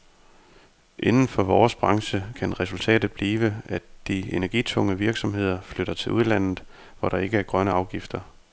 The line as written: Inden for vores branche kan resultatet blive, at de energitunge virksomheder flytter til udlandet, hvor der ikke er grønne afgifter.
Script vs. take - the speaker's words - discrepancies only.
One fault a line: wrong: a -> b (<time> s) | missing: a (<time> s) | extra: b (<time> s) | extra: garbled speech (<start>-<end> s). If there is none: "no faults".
no faults